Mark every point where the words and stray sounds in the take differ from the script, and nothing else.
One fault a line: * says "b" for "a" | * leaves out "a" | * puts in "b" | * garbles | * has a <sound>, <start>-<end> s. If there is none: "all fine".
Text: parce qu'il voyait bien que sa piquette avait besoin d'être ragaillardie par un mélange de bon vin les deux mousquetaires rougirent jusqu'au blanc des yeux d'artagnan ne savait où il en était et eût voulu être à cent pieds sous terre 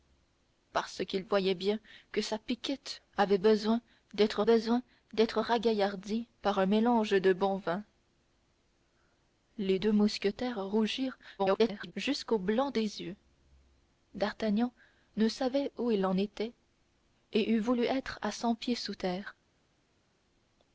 * puts in "besoin d'être"
* garbles